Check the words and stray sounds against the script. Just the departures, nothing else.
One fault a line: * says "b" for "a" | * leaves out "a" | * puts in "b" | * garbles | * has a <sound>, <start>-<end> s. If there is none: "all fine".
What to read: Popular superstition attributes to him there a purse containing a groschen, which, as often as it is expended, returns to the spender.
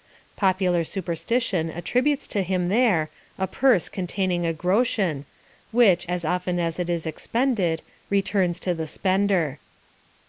all fine